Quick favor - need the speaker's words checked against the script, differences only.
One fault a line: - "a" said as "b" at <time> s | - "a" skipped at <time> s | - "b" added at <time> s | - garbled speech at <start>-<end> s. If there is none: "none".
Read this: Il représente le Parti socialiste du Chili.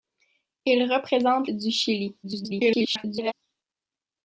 - "le Parti socialiste" skipped at 1.5 s
- garbled speech at 2.2-3.3 s